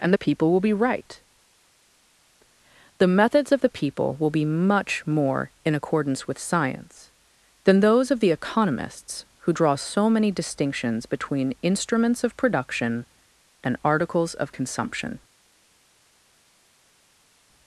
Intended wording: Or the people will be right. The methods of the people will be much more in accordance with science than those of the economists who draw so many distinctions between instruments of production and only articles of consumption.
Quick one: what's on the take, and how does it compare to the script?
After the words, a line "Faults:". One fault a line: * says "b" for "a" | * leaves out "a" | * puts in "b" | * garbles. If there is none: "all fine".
And the people will be right. The methods of the people will be much more in accordance with science than those of the economists who draw so many distinctions between instruments of production and articles of consumption.
Faults:
* says "And" for "Or"
* leaves out "only"